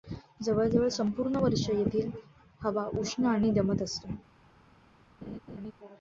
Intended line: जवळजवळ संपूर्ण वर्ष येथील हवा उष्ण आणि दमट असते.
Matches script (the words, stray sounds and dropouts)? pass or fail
fail